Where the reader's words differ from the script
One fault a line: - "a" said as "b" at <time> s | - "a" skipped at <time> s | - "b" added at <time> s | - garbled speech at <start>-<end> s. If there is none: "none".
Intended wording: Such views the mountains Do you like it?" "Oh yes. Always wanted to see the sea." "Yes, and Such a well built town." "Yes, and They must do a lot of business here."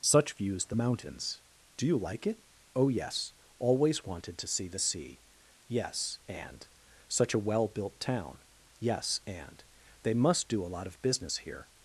none